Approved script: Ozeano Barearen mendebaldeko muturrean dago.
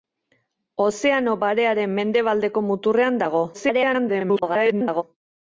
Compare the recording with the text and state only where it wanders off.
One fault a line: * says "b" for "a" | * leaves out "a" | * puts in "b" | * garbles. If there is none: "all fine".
* garbles